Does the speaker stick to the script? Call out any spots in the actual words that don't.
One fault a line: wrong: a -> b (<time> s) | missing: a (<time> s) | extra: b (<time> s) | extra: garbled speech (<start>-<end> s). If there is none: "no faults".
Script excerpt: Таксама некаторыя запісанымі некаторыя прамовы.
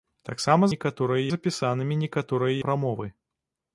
no faults